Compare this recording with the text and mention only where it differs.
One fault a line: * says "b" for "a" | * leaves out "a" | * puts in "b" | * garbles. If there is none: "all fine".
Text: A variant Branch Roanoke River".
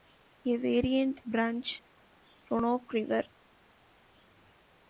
all fine